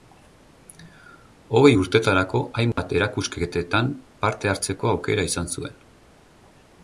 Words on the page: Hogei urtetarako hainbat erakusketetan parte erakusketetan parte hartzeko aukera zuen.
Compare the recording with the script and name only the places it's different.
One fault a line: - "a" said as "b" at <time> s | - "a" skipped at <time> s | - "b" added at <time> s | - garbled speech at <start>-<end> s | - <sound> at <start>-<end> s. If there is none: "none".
- dropout at 2.7-2.8 s
- "erakusketetan parte" skipped at 4.5 s
- "izan" added at 5.3 s